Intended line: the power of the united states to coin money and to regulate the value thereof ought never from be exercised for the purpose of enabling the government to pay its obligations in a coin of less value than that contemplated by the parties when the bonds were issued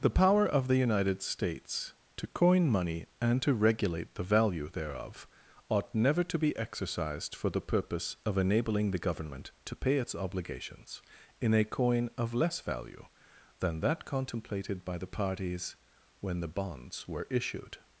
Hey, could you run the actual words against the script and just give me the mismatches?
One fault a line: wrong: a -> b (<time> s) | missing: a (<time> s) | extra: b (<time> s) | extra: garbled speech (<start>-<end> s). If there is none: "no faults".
wrong: from -> to (6.2 s)